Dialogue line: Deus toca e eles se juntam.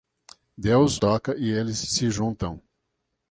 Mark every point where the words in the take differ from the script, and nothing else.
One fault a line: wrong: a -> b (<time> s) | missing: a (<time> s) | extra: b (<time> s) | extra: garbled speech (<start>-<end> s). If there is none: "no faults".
no faults